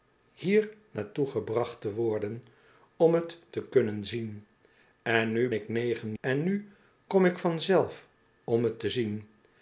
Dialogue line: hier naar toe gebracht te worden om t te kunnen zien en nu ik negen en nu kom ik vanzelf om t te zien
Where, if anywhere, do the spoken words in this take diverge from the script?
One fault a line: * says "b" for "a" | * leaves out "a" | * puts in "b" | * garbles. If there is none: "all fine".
all fine